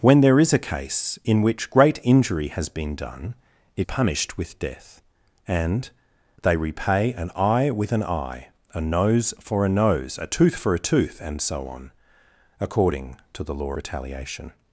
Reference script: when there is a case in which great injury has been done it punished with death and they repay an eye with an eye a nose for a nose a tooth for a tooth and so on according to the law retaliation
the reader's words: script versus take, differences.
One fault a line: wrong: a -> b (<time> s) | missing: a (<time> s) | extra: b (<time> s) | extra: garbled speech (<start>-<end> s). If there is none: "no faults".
no faults